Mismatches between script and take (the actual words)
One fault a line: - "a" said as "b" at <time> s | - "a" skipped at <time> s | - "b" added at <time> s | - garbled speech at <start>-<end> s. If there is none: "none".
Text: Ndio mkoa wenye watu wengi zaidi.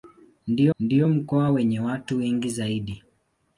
- "ndio" added at 0.8 s